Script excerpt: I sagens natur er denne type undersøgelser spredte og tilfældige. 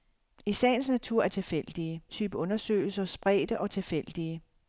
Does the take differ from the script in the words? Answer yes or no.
yes